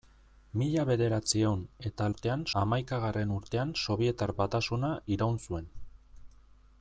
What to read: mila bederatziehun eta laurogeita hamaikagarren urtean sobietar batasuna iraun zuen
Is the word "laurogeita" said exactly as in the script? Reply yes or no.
no